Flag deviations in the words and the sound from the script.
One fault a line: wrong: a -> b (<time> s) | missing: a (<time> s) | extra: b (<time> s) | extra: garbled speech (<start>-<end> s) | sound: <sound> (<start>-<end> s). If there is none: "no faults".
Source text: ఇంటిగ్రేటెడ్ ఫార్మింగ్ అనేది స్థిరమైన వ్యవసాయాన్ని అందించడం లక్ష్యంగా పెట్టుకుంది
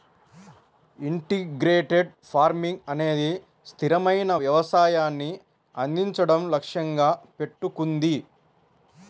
no faults